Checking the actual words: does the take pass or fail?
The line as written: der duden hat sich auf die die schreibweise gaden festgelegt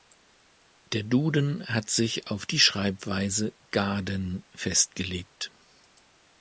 fail